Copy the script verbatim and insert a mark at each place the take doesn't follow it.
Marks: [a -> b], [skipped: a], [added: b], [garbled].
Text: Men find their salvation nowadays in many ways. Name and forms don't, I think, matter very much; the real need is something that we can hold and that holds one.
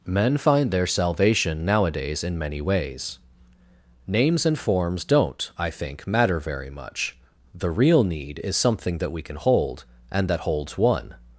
Men find their salvation nowadays in many ways. [Name -> Names] and forms don't, I think, matter very much; the real need is something that we can hold and that holds one.